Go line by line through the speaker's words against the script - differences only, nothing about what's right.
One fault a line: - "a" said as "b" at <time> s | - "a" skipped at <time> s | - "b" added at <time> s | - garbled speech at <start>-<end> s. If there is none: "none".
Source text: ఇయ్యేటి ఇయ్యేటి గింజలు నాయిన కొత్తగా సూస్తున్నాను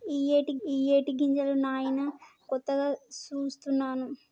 none